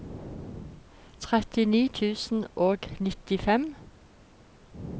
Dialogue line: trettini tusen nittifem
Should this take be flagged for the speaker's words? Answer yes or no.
yes